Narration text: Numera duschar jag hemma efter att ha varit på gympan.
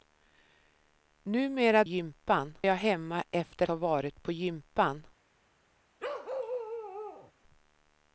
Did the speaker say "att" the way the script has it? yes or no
no